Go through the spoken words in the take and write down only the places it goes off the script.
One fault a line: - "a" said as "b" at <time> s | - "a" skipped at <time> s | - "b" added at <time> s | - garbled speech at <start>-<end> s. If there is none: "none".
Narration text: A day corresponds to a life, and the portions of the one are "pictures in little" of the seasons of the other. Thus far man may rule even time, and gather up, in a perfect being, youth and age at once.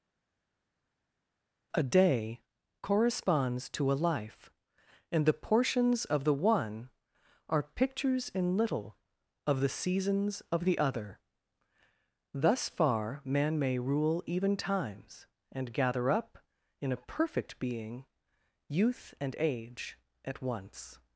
- "time" said as "times" at 14.6 s